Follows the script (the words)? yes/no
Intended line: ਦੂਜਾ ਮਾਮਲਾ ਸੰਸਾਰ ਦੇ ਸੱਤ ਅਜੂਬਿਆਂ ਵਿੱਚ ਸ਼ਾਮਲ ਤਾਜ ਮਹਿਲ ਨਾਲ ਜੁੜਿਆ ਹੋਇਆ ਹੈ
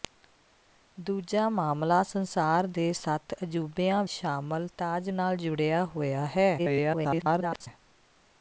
no